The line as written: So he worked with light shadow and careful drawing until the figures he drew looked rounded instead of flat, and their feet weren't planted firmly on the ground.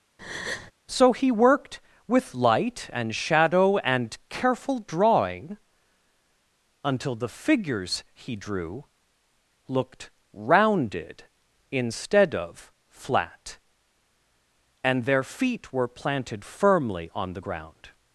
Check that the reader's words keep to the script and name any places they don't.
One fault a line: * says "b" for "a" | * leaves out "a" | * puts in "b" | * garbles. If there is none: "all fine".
* puts in "and"
* says "were" for "weren't"